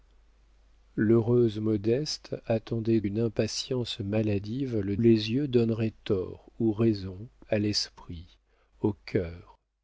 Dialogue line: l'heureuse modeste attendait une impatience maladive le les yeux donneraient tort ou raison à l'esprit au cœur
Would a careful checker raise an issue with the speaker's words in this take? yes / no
no